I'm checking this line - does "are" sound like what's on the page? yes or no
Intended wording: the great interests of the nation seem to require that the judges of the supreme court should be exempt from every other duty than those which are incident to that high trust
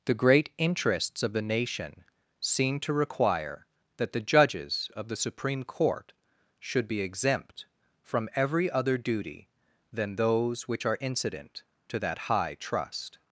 yes